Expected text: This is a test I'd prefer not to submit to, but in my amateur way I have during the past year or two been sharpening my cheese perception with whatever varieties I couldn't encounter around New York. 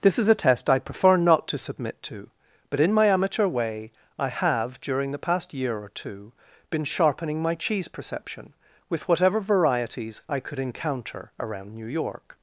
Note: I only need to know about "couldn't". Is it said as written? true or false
false